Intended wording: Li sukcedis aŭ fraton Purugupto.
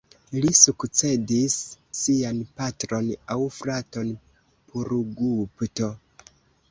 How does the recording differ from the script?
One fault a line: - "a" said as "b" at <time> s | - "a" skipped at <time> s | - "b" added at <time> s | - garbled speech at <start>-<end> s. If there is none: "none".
- "sian patron" added at 2.0 s